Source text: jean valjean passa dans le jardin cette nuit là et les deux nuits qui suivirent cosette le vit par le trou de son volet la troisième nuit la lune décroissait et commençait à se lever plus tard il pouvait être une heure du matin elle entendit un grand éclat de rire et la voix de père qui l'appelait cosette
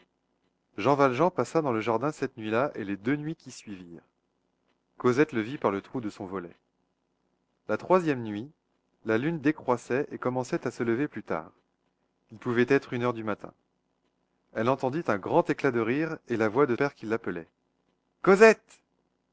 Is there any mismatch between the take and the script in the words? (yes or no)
no